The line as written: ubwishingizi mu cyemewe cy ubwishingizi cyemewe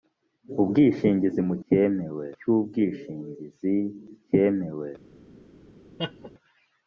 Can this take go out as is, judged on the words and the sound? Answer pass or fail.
fail